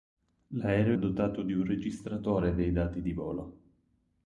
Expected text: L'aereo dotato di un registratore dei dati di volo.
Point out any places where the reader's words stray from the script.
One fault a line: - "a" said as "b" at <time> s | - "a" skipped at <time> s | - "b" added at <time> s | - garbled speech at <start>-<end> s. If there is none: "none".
none